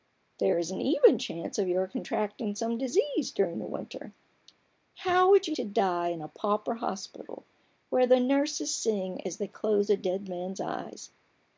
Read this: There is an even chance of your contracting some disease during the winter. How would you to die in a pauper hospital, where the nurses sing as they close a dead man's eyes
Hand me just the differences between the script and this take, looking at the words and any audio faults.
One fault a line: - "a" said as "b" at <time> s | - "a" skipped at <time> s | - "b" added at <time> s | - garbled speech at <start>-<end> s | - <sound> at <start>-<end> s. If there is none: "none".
none